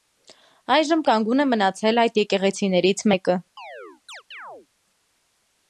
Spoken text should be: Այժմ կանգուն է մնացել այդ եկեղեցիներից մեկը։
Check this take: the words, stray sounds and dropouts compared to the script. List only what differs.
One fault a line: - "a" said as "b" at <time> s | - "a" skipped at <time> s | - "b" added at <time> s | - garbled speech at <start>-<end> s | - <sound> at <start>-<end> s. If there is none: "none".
- chirp at 3.6-4.7 s